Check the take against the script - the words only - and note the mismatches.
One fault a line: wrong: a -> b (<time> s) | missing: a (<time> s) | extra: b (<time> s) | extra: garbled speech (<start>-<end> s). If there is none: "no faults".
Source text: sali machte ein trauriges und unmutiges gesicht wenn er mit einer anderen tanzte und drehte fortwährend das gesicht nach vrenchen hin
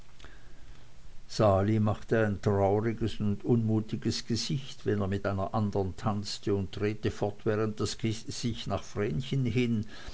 no faults